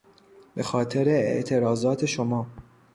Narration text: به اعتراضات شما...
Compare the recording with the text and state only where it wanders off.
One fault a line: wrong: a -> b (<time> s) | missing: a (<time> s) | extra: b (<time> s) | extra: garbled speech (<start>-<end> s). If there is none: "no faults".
extra: خاطر (0.6 s)